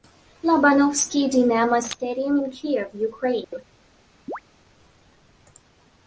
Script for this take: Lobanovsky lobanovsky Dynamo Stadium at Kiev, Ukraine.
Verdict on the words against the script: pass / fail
fail